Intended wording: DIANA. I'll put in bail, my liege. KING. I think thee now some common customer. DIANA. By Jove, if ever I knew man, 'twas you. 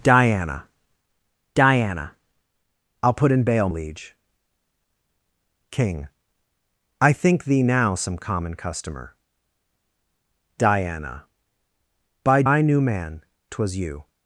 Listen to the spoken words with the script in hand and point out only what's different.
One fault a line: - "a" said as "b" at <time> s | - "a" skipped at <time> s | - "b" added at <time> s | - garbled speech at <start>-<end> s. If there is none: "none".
- "diana" added at 1.5 s
- "my" skipped at 3.7 s
- "Jove if ever" skipped at 12.4 s